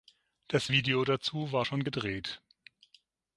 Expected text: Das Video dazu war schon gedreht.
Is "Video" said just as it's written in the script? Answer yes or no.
yes